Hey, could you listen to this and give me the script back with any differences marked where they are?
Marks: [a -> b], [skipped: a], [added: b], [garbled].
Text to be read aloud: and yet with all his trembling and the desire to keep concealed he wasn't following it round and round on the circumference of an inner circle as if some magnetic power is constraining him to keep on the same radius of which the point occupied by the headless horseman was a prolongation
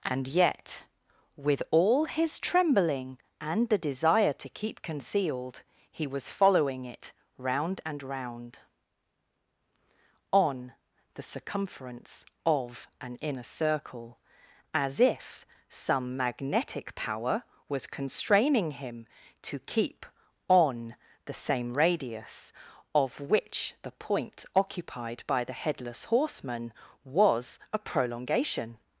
and yet with all his trembling and the desire to keep concealed he [wasn't -> was] following it round and round on the circumference of an inner circle as if some magnetic power [is -> was] constraining him to keep on the same radius of which the point occupied by the headless horseman was a prolongation